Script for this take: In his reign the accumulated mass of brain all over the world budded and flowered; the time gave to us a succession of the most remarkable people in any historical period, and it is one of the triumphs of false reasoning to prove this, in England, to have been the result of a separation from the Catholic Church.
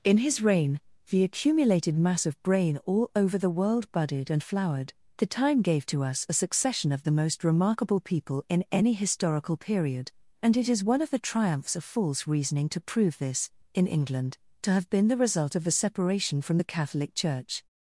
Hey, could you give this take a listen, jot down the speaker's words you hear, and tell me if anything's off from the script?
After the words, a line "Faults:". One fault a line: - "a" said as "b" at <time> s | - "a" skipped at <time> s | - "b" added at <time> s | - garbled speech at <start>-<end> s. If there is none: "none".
In his reign the accumulated mass of brain all over the world budded and flowered; the time gave to us a succession of the most remarkable people in any historical period, and it is one of the triumphs of false reasoning to prove this, in England, to have been the result of a separation from the Catholic Church.
Faults:
none